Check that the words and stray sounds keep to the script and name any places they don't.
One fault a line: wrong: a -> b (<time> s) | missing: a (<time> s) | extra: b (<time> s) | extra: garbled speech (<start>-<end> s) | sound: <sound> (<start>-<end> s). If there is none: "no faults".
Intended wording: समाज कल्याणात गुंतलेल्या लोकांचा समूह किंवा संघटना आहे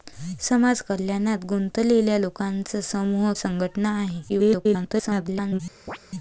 missing: किंवा (3.3 s)
extra: garbled speech (4.3-5.6 s)
sound: chirp (5.9-6.0 s)